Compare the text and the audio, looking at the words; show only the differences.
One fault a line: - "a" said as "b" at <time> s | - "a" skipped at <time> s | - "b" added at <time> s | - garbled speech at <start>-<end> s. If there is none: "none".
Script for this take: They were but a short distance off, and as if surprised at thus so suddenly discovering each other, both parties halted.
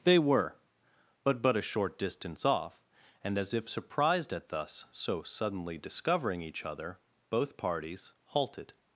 - "but" added at 1.4 s